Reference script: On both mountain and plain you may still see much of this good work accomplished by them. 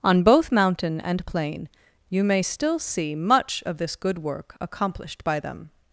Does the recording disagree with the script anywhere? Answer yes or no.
no